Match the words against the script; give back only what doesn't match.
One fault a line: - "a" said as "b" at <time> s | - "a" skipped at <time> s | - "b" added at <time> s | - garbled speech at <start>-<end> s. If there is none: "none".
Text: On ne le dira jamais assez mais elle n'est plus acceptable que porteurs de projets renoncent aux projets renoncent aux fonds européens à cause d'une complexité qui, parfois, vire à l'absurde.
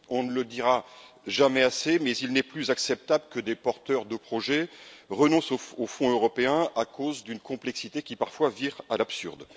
- "elle" said as "il" at 2.2 s
- "des" added at 3.4 s
- "projets renoncent aux" skipped at 5.9 s